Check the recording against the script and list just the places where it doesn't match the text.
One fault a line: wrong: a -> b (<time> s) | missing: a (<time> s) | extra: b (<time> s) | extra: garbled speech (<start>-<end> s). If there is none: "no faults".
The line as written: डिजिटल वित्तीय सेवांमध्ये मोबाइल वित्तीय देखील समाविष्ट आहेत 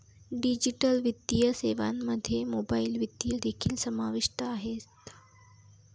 no faults